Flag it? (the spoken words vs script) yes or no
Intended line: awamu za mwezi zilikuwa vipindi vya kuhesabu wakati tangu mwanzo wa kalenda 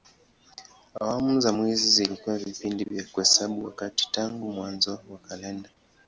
no